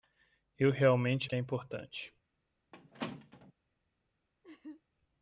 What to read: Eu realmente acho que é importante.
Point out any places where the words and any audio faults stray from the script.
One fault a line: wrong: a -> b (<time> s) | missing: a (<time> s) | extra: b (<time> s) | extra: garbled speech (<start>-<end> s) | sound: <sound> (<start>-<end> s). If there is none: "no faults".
missing: acho (1.3 s)
sound: squeak (2.7-3.5 s)
sound: laugh (4.4-4.8 s)